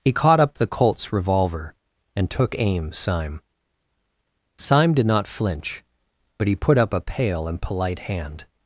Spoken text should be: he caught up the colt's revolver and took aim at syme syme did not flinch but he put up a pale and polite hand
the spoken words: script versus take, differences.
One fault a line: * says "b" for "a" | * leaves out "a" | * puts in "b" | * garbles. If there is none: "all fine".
* leaves out "at"